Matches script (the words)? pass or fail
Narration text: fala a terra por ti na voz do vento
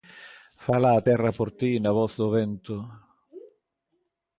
pass